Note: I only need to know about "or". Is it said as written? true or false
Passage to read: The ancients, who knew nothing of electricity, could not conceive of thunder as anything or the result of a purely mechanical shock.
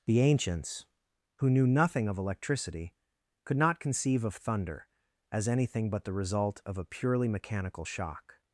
false